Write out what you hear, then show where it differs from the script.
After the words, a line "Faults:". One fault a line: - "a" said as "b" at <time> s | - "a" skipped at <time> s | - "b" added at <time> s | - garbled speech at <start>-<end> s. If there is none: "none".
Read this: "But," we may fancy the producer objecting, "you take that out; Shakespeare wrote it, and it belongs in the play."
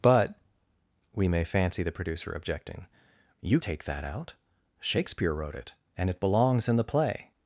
"But," we may fancy the producer objecting, "you take that out; Shakespeare wrote it, and it belongs in the play."
Faults:
none